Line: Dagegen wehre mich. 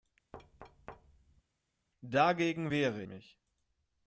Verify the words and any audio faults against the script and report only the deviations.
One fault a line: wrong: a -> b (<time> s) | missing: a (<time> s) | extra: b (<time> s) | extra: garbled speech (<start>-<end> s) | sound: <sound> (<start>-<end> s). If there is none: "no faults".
sound: thud (0.3-1.4 s)